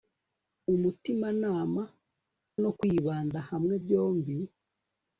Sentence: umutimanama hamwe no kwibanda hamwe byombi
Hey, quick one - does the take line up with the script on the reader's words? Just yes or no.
no